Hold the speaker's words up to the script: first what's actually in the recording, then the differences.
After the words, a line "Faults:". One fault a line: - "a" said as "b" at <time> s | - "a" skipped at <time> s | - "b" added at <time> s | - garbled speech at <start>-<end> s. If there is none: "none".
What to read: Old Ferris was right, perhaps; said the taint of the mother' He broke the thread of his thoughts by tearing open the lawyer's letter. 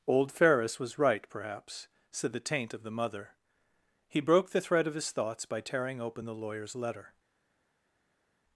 Old Ferris was right, perhaps; said the taint of the mother' He broke the thread of his thoughts by tearing open the lawyer's letter.
Faults:
none